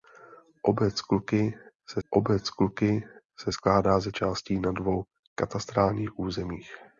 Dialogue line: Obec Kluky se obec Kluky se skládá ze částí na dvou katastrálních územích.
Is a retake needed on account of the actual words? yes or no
no